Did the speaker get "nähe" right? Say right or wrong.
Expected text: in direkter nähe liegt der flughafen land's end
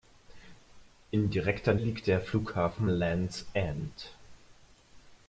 wrong